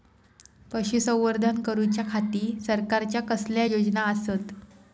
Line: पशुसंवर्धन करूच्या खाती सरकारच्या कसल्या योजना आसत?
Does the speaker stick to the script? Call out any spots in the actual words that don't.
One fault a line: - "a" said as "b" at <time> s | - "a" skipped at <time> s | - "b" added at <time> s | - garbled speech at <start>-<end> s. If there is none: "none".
none